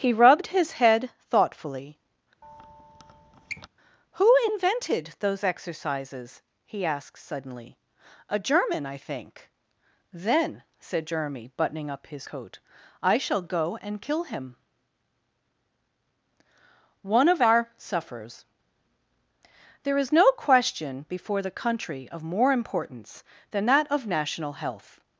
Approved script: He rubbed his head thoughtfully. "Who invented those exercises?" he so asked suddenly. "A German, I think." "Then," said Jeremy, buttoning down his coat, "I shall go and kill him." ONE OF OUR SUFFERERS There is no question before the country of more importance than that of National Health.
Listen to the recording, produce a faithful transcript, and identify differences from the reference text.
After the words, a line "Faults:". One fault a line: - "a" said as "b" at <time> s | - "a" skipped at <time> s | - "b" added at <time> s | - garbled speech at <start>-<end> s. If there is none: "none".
He rubbed his head thoughtfully. "Who invented those exercises?" he asked suddenly. "A German, I think." "Then," said Jeremy, buttoning up his coat, "I shall go and kill him." ONE OF OUR SUFFERERS There is no question before the country of more importance than that of National Health.
Faults:
- "so" skipped at 6.8 s
- "down" said as "up" at 11.9 s